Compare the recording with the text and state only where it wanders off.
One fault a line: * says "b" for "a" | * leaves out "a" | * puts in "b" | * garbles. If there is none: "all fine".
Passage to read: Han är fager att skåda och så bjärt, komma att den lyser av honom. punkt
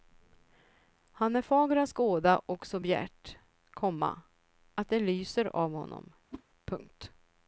* says "det" for "den"